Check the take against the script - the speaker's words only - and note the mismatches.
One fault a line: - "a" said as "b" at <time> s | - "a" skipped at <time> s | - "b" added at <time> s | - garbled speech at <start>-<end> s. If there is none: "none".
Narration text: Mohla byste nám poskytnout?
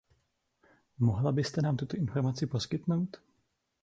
- "tuto informaci" added at 1.8 s